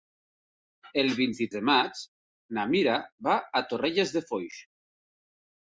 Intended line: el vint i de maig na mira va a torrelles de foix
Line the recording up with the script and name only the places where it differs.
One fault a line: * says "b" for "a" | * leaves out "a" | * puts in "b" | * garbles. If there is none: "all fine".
all fine